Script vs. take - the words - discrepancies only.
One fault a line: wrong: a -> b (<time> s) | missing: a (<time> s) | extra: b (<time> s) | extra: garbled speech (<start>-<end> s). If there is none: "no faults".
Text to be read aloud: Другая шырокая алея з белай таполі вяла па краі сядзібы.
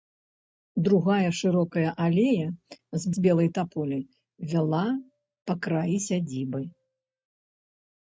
extra: з (3.1 s)